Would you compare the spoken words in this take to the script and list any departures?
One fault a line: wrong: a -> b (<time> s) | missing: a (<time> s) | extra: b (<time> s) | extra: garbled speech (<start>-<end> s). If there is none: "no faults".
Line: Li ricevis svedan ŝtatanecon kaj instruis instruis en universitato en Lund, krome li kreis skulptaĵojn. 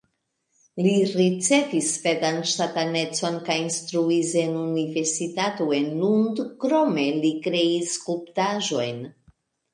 missing: instruis (4.3 s)